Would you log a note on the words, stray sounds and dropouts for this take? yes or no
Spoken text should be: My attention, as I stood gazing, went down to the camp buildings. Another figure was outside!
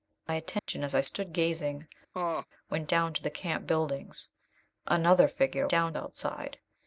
yes